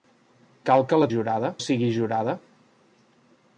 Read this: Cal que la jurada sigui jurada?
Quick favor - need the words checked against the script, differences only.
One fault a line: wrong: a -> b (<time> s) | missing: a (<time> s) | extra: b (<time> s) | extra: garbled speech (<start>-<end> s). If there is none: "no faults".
no faults